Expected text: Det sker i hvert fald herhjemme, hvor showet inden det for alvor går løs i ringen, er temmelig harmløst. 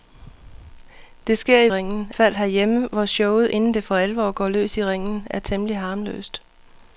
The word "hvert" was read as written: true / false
false